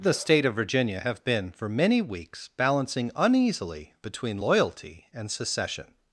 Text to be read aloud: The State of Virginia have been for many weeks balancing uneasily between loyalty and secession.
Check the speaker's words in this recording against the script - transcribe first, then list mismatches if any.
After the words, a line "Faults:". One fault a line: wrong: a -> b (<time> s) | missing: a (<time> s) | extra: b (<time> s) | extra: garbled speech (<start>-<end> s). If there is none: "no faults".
The State of Virginia have been for many weeks balancing uneasily between loyalty and secession.
Faults:
no faults